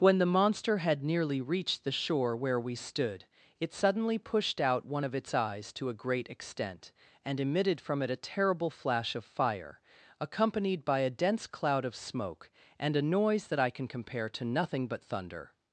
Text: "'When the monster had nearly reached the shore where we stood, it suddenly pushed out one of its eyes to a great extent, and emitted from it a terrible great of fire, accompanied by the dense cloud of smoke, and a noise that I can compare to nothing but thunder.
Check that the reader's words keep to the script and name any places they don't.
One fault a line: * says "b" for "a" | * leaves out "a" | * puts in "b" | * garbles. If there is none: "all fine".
* says "flash" for "great"
* says "a" for "the"